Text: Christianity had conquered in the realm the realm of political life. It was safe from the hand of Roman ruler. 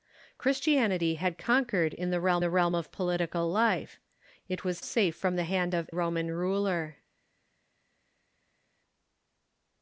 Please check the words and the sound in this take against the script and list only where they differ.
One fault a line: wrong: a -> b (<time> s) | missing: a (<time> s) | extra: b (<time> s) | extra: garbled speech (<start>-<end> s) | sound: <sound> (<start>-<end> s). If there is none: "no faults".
no faults